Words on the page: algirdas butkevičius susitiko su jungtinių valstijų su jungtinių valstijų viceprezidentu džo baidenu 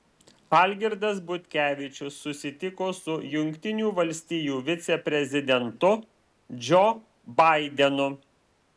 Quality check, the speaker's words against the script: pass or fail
fail